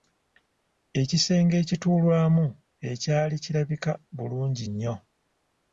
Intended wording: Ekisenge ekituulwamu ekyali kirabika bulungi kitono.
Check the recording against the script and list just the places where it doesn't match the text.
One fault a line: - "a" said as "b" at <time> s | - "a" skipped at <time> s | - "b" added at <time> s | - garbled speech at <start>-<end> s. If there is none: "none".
- "kitono" said as "nnyo" at 4.7 s